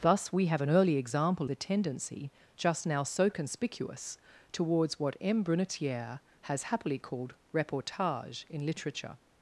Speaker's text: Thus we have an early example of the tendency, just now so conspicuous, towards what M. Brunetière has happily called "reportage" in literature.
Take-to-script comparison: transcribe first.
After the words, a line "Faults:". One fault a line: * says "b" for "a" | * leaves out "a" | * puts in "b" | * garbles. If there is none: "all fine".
Thus we have an early example the tendency, just now so conspicuous, towards what M. Brunetière has happily called "reportage" in literature.
Faults:
* leaves out "of"